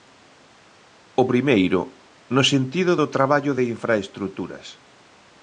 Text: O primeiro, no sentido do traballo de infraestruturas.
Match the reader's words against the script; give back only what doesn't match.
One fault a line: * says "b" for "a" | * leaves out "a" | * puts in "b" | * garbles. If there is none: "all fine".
all fine